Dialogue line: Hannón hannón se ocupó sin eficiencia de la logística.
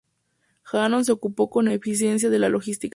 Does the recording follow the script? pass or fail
fail